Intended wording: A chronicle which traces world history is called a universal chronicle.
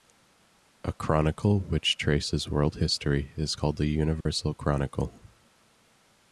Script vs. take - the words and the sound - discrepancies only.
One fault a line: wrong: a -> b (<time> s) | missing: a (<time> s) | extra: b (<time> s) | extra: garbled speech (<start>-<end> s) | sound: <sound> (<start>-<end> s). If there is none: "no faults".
sound: dropout (4.2-4.3 s)